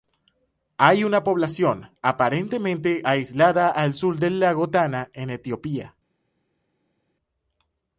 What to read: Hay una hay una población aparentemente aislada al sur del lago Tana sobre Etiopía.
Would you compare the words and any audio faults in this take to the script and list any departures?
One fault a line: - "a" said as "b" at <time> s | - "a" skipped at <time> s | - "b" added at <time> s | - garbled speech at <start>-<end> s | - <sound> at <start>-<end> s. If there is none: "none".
- "hay una" skipped at 1.2 s
- "sobre" said as "en" at 5.1 s